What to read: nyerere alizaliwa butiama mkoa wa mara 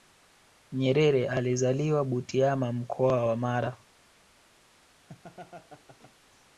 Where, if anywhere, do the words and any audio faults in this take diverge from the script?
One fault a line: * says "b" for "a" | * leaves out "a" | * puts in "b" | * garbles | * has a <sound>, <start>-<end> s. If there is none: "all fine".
* has a laugh, 5.1-6.1 s